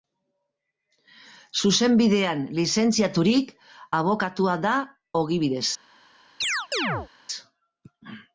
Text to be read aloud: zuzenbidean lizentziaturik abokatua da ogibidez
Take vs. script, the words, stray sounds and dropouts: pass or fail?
fail